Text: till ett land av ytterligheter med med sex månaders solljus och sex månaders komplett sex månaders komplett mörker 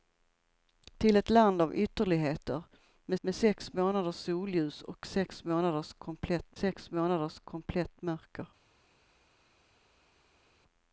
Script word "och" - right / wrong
right